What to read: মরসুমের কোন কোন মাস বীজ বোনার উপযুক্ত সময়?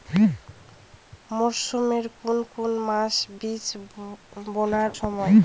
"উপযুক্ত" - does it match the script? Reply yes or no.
no